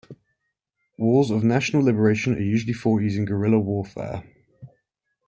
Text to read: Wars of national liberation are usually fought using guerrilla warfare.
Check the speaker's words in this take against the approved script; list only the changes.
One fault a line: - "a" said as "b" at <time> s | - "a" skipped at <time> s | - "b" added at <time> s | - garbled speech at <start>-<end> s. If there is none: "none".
none